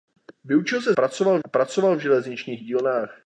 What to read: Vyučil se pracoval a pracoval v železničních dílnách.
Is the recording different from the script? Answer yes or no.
no